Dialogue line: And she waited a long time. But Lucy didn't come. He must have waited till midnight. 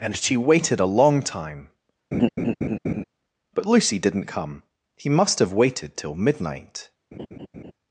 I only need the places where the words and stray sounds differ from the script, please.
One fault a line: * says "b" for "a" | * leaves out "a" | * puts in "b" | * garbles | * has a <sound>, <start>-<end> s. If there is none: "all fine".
* has a laugh, 2.1-3.0 s
* has a laugh, 7.1-7.7 s